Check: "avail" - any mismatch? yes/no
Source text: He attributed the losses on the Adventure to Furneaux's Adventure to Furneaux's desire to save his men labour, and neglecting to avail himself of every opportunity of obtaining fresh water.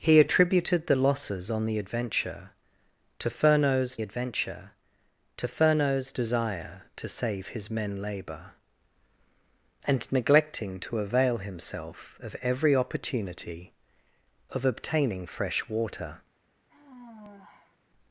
no